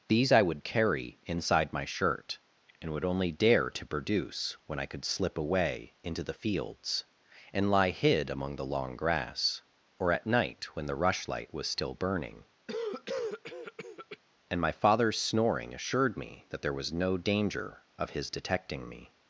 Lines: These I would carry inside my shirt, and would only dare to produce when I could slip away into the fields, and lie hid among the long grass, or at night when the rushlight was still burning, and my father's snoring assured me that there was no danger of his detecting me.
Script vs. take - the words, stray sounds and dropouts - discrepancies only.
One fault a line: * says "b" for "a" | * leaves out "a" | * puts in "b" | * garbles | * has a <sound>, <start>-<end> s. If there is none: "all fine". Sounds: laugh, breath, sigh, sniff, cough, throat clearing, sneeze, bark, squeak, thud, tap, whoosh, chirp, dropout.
* has a cough, 12.7-14.2 s